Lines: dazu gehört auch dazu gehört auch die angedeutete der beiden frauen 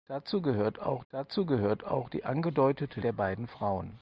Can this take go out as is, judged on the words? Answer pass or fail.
pass